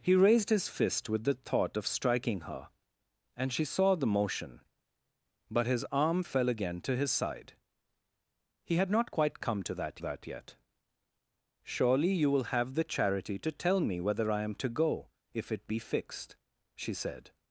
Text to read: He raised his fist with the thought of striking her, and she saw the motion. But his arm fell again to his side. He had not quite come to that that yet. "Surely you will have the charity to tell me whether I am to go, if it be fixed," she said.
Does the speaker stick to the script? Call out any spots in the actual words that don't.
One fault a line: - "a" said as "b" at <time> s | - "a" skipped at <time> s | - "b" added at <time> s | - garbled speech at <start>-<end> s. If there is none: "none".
none